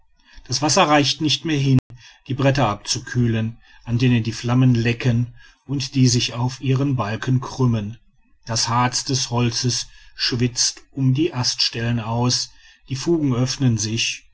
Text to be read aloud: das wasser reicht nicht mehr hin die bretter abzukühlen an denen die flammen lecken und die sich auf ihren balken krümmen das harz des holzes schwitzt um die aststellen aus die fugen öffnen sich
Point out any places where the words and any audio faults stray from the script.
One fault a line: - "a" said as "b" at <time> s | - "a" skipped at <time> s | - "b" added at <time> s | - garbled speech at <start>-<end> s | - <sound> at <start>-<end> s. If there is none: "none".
- dropout at 1.8-1.9 s